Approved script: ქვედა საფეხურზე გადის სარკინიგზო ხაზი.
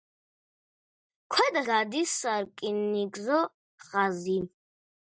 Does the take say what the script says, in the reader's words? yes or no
no